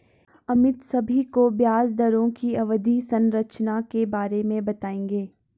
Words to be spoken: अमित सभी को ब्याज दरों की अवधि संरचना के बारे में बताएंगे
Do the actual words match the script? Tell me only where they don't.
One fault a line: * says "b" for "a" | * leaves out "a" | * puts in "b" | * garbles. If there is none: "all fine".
all fine